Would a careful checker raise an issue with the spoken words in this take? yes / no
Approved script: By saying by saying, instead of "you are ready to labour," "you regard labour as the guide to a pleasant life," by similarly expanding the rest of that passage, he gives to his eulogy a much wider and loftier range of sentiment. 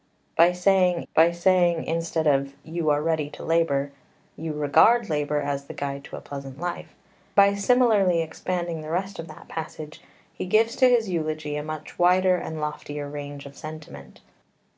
no